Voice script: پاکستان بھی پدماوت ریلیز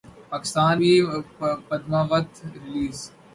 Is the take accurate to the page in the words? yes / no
yes